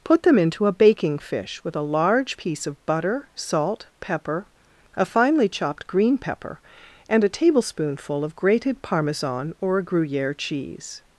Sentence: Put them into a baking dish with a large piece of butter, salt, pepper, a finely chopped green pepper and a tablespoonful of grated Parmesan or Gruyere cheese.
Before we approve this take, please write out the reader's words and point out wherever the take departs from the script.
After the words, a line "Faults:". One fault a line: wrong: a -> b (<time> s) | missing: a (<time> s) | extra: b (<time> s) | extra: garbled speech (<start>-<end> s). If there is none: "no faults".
Put them into a baking fish with a large piece of butter, salt, pepper, a finely chopped green pepper and a tablespoonful of grated Parmesan or Gruyere cheese.
Faults:
wrong: dish -> fish (1.2 s)